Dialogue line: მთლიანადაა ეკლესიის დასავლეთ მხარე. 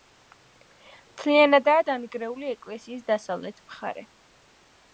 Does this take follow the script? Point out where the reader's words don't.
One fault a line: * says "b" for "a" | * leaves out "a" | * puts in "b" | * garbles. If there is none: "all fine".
* puts in "დანგრეული"